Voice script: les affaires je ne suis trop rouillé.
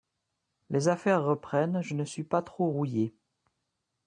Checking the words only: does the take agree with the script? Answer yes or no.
no